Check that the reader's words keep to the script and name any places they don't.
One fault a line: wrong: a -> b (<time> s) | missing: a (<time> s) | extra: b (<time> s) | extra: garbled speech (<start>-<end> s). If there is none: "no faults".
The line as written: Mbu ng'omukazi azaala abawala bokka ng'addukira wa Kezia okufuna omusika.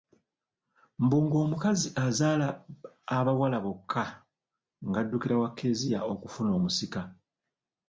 no faults